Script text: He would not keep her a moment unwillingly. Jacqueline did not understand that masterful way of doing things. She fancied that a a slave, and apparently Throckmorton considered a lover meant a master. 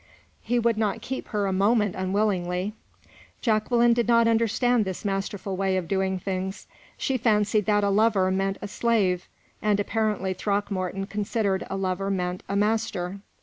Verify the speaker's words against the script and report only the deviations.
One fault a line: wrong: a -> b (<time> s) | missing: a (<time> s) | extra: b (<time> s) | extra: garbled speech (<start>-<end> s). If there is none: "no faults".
wrong: that -> this (4.8 s)
extra: lover meant (7.9 s)